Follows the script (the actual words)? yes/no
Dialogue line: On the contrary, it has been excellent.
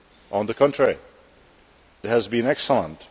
no